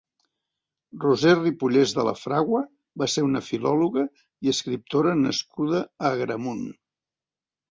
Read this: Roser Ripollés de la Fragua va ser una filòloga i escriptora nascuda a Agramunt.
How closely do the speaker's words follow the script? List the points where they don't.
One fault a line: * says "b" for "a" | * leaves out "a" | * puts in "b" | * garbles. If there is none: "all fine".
all fine